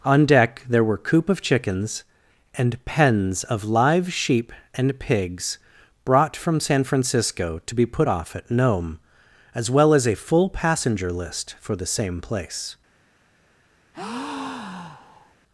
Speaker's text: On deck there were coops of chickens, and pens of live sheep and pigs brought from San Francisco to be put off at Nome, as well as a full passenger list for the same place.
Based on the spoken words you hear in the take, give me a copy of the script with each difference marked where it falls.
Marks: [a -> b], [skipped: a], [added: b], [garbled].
On deck there were [coops -> coop] of chickens, and pens of live sheep and pigs brought from San Francisco to be put off at Nome, as well as a full passenger list for the same place.